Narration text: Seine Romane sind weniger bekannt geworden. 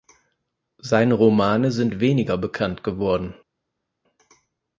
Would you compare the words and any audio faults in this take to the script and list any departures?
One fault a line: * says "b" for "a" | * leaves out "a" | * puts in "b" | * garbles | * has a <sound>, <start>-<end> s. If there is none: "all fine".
all fine